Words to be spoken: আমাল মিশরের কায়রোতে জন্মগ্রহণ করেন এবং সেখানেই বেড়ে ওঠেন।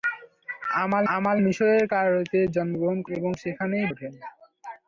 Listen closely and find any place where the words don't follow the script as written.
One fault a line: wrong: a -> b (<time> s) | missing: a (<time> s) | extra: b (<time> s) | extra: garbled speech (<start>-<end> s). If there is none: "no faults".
extra: আমাল (1.1 s)
missing: করেন (3.0 s)
missing: বেড়ে (3.9 s)